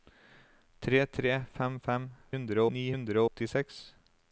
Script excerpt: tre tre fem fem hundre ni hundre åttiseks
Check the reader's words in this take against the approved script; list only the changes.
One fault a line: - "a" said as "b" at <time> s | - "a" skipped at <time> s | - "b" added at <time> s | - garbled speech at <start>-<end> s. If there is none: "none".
none